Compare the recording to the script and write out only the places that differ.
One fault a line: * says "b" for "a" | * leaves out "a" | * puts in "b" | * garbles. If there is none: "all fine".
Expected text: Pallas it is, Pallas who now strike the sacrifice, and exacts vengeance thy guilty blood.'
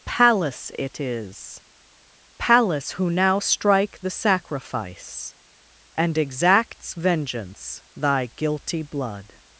all fine